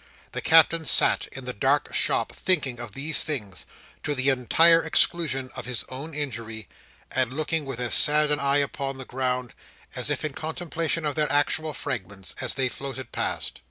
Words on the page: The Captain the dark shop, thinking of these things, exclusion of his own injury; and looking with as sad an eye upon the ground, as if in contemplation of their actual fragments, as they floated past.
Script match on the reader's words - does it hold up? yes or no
no